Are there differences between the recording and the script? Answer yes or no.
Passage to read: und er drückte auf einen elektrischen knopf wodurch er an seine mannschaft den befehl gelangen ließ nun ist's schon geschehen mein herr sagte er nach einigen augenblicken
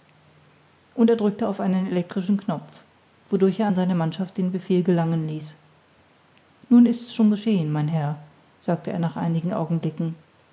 no